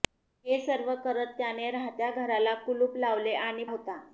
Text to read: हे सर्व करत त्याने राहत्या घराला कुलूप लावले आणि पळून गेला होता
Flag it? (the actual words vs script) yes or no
yes